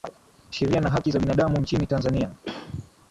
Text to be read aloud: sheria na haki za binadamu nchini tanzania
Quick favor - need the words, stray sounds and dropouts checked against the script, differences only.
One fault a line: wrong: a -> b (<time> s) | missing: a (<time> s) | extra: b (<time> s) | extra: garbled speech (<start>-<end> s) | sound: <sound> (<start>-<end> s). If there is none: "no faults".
sound: throat clearing (2.4-2.9 s)